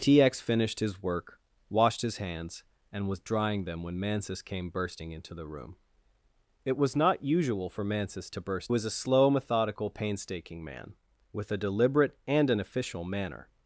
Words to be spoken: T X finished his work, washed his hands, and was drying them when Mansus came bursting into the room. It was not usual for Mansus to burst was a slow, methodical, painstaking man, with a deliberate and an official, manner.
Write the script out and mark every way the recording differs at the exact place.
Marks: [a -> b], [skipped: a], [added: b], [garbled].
T X finished his work, washed his hands, and was drying them when Mansus came bursting into the room. It was not usual for Mansus to burst was a slow, methodical, painstaking man, with a deliberate and an official, manner.